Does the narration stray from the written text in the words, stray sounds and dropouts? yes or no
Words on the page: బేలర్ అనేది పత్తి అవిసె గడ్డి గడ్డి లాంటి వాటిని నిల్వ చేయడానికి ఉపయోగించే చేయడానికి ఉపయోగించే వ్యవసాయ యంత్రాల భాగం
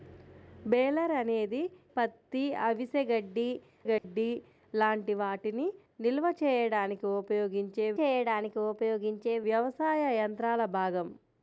yes